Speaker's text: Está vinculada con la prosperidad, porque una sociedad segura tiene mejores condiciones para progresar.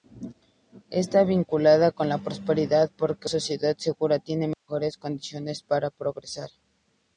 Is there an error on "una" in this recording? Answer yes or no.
yes